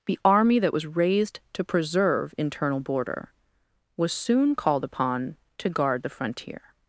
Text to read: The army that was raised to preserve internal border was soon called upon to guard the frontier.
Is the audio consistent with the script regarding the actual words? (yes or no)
yes